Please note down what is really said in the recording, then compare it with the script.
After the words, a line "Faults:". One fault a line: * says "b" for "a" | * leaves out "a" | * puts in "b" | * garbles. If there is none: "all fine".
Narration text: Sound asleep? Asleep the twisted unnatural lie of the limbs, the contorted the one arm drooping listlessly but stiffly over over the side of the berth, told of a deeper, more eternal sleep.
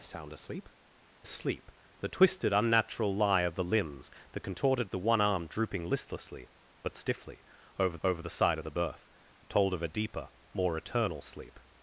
Sound asleep? Asleep the twisted unnatural lie of the limbs, the contorted the one arm drooping listlessly but stiffly over over the side of the berth, told of a deeper, more eternal sleep.
Faults:
all fine